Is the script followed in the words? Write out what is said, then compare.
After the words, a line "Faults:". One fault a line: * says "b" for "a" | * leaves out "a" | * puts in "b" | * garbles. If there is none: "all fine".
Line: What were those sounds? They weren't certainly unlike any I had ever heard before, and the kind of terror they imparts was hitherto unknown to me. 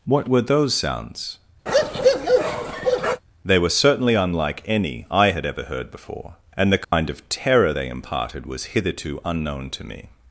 What were those sounds? They were certainly unlike any I had ever heard before, and the kind of terror they imparted was hitherto unknown to me.
Faults:
* says "were" for "weren't"
* says "imparted" for "imparts"